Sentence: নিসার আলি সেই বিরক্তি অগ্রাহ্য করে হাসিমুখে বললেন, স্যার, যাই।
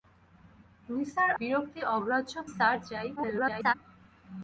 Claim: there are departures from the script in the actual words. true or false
true